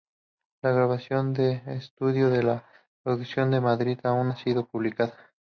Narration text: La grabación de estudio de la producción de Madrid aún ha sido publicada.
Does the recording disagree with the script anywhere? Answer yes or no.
no